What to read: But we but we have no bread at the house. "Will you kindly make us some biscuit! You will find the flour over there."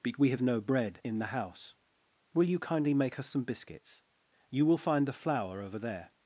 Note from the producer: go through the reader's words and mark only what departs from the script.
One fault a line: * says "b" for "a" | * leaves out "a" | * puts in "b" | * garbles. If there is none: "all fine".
* leaves out "but we"
* says "in" for "at"
* says "biscuits" for "biscuit"